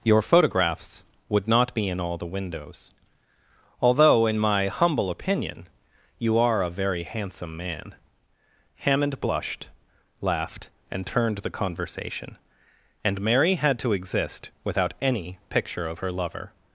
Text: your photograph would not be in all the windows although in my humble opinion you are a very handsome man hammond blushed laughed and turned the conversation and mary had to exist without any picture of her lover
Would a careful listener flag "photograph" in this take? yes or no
yes